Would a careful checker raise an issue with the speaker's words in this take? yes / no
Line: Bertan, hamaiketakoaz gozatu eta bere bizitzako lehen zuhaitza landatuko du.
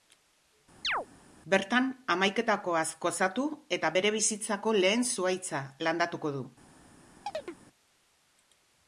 no